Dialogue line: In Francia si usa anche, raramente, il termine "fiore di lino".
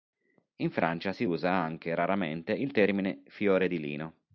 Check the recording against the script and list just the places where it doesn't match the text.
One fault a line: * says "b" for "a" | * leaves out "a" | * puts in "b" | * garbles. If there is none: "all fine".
all fine